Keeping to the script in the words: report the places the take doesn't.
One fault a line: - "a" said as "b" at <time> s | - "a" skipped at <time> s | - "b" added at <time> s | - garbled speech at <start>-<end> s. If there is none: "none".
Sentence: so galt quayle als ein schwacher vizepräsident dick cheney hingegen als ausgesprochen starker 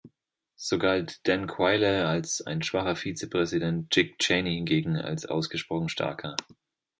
- "dan" added at 1.3 s